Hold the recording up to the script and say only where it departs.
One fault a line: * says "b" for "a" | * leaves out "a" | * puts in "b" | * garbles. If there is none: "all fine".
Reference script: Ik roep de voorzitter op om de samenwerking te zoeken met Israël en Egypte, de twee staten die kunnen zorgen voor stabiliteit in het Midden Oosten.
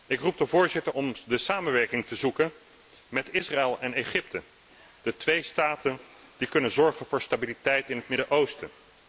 * leaves out "op"